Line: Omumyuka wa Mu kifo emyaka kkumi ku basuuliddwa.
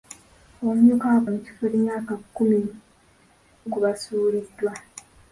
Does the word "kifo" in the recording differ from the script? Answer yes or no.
no